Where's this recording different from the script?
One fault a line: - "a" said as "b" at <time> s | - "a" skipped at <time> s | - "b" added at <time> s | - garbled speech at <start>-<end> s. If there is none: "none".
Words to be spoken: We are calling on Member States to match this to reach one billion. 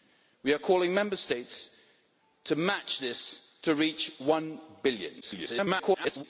- garbled speech at 5.2-6.2 s